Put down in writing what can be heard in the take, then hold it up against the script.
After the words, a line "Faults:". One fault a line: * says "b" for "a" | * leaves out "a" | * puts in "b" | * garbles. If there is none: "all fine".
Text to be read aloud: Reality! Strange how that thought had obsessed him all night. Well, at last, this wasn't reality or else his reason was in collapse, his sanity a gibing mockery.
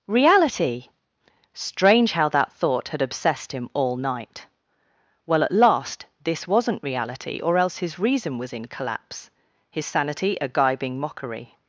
Reality! Strange how that thought had obsessed him all night. Well, at last, this wasn't reality or else his reason was in collapse, his sanity a gibing mockery.
Faults:
all fine